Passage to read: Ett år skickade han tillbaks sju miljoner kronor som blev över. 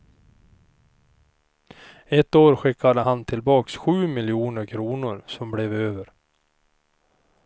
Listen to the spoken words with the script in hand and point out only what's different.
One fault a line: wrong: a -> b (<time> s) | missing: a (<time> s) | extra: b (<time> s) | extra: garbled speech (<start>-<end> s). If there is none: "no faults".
no faults